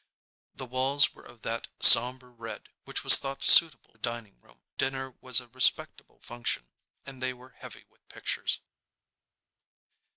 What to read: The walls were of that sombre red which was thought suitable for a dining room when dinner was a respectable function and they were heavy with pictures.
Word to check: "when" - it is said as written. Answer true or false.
false